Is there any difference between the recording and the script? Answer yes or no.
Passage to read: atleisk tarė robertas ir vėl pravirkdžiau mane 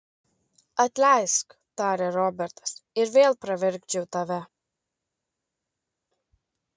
yes